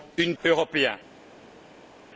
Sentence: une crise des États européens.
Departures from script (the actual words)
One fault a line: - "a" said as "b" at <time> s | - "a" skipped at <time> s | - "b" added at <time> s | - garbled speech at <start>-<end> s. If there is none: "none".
- "crise des États" skipped at 0.3 s